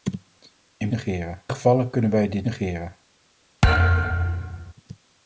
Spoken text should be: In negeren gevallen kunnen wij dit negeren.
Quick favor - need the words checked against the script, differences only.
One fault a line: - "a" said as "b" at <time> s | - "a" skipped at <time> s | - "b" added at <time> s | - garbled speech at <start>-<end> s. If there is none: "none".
none